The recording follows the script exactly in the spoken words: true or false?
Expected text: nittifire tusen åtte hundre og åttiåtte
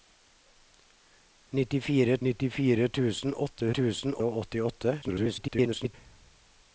false